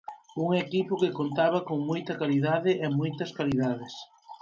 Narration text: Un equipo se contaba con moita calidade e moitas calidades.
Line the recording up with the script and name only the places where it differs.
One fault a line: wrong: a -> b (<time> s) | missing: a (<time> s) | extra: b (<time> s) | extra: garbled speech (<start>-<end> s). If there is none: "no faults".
wrong: se -> que (1.0 s)